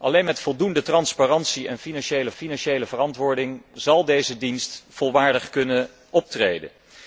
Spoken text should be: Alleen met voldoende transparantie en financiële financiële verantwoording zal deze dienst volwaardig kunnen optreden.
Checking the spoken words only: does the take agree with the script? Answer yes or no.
yes